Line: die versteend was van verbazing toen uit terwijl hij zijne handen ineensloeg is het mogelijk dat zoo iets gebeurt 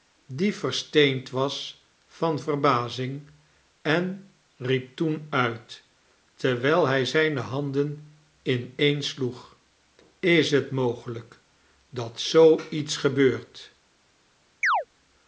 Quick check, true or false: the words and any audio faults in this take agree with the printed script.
false